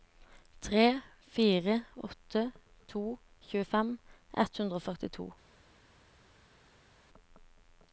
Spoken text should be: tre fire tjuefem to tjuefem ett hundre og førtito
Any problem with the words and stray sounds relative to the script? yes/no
yes